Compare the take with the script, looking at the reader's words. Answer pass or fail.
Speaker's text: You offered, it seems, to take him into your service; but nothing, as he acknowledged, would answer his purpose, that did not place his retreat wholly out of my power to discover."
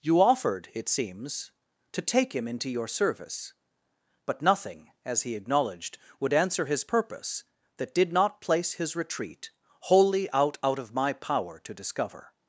fail